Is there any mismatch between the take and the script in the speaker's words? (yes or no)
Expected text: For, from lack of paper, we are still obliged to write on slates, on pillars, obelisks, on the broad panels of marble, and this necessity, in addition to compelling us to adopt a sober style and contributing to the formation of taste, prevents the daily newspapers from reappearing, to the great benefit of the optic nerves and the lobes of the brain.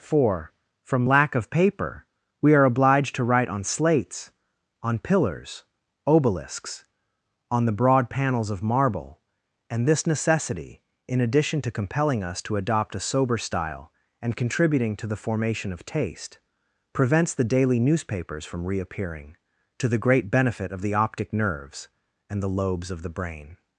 yes